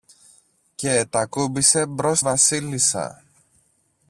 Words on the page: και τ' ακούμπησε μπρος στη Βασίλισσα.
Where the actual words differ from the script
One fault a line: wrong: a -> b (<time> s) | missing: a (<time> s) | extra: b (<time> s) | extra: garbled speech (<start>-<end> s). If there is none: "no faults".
missing: στη (2.2 s)